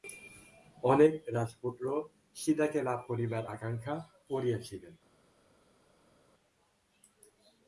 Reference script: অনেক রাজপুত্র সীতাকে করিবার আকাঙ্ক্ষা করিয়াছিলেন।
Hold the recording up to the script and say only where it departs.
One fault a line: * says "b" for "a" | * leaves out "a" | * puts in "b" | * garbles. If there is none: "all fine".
* puts in "লাভ"